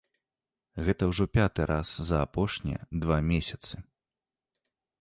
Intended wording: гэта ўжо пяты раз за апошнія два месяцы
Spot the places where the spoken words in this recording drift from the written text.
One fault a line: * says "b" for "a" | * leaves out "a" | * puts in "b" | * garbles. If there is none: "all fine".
all fine